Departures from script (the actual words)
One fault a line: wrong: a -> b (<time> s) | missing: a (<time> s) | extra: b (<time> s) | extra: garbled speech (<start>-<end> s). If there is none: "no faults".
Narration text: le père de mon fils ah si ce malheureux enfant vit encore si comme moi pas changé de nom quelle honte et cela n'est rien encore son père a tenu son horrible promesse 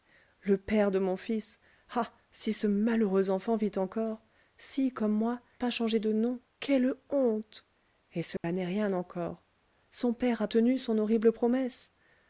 no faults